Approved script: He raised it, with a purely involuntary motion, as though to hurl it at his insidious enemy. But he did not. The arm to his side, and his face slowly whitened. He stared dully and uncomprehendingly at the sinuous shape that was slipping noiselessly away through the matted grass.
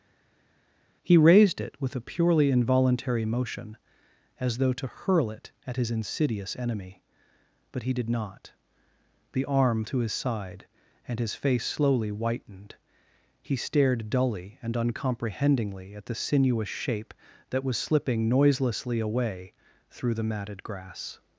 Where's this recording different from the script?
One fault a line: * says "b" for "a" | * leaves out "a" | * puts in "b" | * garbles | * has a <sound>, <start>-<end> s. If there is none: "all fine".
all fine